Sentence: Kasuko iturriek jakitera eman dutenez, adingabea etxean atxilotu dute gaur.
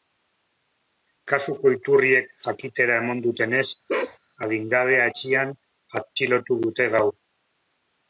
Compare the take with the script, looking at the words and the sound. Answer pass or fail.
fail